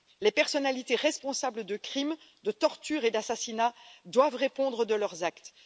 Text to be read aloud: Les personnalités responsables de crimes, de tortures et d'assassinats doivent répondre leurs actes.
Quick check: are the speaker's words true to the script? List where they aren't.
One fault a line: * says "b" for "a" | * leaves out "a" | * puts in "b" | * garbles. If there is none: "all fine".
* puts in "de"